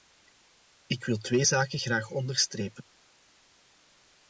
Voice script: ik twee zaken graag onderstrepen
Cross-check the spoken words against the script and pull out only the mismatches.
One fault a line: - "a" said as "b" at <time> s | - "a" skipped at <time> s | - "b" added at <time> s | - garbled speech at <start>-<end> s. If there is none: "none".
- "wil" added at 1.1 s